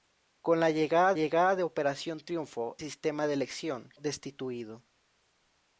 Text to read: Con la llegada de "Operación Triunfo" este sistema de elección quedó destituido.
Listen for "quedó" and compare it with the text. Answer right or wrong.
wrong